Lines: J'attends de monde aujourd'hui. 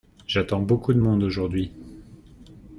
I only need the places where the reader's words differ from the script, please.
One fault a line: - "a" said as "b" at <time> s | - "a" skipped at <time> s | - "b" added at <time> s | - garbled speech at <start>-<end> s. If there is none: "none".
- "beaucoup" added at 0.6 s